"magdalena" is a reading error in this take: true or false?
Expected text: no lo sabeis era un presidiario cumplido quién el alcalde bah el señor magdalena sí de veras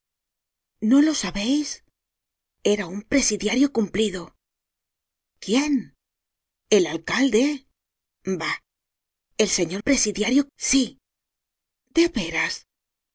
true